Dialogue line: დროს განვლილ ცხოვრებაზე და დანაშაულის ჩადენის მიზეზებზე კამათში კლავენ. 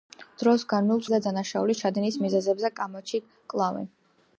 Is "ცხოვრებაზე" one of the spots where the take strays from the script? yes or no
yes